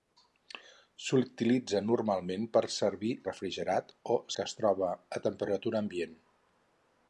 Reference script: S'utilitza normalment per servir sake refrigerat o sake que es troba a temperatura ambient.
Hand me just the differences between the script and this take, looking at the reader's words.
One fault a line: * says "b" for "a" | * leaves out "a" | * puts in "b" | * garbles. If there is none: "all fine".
* leaves out "sake"
* leaves out "sake"